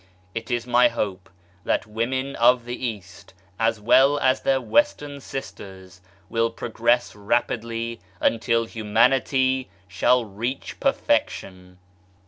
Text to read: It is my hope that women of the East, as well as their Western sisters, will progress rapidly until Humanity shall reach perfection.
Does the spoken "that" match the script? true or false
true